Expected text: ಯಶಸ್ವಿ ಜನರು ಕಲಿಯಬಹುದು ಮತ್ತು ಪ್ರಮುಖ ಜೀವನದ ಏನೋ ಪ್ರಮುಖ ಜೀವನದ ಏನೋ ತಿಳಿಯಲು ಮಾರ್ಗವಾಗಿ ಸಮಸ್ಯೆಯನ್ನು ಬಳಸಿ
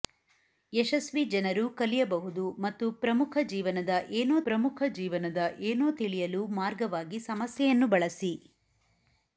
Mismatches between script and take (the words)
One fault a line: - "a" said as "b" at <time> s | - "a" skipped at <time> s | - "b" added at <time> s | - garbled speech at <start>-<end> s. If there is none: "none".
none